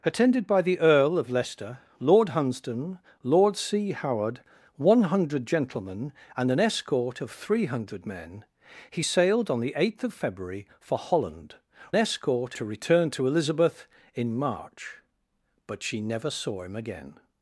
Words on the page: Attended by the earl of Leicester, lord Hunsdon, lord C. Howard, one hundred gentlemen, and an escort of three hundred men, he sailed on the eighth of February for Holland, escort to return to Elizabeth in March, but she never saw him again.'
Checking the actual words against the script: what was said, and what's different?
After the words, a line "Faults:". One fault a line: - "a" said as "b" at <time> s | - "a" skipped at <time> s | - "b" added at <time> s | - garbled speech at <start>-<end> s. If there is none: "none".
Attended by the earl of Leicester, lord Hunsdon, lord C. Howard, one hundred gentlemen, and an escort of three hundred men, he sailed on the eighth of February for Holland, escort to return to Elizabeth in March, but she never saw him again.'
Faults:
none